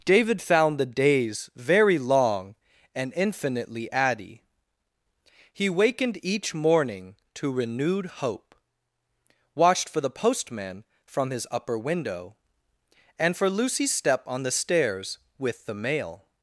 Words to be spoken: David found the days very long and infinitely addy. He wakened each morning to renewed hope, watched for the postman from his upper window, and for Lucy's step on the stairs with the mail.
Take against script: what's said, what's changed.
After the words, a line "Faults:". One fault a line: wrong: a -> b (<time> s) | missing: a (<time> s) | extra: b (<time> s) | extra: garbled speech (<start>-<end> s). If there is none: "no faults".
David found the days very long and infinitely addy. He wakened each morning to renewed hope, watched for the postman from his upper window, and for Lucy's step on the stairs with the mail.
Faults:
no faults